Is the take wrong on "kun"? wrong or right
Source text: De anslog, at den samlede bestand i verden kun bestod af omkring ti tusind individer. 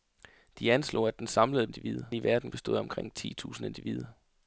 wrong